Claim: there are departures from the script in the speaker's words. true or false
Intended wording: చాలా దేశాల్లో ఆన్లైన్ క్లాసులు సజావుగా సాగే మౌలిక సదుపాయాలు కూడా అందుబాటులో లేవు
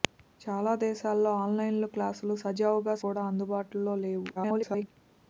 true